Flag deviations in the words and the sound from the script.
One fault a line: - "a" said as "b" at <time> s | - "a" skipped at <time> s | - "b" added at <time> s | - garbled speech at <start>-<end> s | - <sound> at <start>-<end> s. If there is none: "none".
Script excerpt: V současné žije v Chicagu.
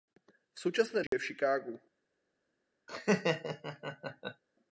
- dropout at 1.1-1.1 s
- laugh at 2.9-4.4 s